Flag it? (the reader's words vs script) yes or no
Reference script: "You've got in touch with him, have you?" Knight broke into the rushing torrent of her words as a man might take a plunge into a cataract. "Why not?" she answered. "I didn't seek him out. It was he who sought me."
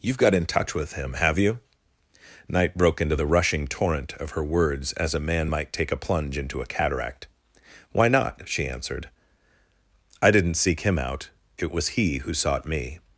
no